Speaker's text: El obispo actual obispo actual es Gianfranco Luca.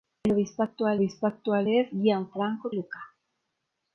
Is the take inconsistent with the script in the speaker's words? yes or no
no